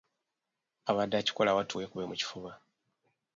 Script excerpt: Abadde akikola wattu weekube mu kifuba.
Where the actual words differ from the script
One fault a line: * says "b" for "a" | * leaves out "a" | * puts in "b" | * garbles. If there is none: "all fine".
all fine